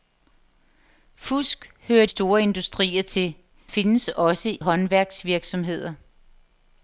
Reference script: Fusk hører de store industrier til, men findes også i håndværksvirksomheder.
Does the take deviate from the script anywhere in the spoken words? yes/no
yes